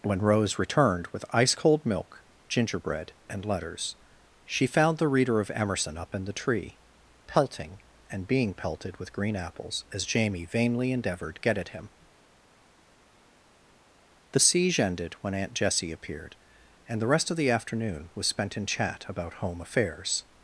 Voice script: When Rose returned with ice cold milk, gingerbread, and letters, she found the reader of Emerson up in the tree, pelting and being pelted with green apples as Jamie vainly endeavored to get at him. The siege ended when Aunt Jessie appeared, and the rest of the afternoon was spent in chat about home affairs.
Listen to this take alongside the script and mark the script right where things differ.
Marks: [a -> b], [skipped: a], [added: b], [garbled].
When Rose returned with ice cold milk, gingerbread, and letters, she found the reader of Emerson up in the tree, pelting and being pelted with green apples as Jamie vainly endeavored [skipped: to] get at him. The siege ended when Aunt Jessie appeared, and the rest of the afternoon was spent in chat about home affairs.